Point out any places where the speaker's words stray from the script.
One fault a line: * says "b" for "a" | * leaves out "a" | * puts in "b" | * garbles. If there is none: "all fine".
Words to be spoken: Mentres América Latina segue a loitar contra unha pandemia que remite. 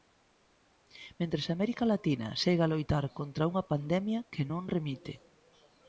* puts in "non"